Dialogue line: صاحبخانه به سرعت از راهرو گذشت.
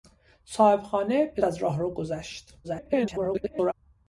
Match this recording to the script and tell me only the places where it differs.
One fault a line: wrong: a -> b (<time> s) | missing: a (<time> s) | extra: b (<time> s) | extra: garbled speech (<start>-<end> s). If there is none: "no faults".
missing: سرعت (1.4 s)
extra: garbled speech (2.6-3.7 s)